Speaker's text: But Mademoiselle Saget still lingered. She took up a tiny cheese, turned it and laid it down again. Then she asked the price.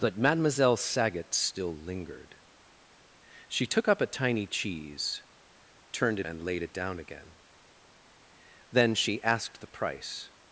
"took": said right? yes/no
yes